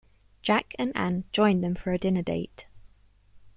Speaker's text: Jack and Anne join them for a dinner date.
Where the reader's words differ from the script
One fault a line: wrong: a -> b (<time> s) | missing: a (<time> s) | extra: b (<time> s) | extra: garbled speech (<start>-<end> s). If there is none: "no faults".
no faults